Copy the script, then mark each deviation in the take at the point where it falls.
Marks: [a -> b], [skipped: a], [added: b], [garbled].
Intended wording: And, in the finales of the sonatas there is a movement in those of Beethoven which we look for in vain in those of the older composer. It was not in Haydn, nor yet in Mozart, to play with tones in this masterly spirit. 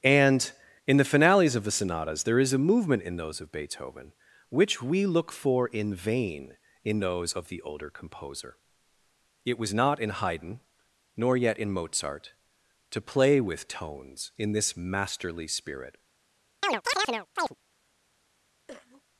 And, in the finales of the sonatas there is a movement in those of Beethoven which we look for in vain in those of the older composer. It was not in Haydn, nor yet in Mozart, to play with tones in this masterly spirit.